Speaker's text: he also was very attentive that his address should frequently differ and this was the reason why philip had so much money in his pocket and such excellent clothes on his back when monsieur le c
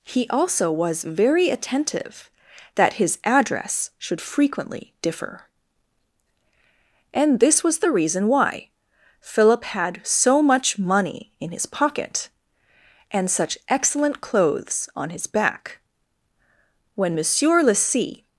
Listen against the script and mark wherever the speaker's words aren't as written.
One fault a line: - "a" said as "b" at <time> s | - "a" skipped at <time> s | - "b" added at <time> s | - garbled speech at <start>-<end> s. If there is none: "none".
none